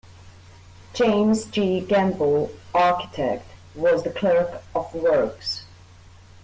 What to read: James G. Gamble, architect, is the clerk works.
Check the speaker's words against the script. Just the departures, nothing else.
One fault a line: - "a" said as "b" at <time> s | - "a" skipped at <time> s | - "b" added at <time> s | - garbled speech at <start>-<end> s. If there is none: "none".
- "is" said as "was" at 3.8 s
- "of" added at 4.7 s